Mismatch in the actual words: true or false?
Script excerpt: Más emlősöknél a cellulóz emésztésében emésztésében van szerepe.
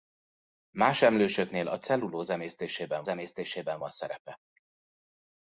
false